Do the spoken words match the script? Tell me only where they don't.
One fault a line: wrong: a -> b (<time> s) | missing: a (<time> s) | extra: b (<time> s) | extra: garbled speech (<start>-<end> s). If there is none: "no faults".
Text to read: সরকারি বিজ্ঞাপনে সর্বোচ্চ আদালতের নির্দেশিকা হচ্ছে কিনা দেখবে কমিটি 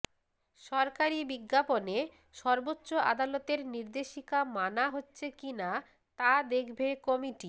extra: মানা (4.5 s)
extra: তা (6.2 s)